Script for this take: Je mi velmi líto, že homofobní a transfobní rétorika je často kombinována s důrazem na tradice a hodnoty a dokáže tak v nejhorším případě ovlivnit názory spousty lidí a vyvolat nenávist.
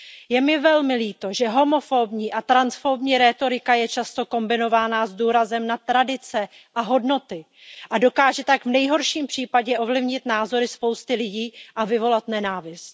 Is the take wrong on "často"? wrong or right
right